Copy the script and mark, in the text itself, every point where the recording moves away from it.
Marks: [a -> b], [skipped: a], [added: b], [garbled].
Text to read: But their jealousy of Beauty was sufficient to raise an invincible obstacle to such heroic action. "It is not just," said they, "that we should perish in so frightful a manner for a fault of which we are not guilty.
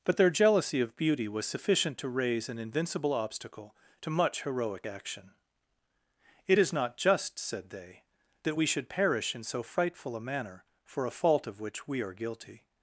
But their jealousy of Beauty was sufficient to raise an invincible obstacle to [such -> much] heroic action. "It is not just," said they, "that we should perish in so frightful a manner for a fault of which we are [skipped: not] guilty.